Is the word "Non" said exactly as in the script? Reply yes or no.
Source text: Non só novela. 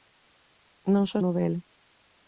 yes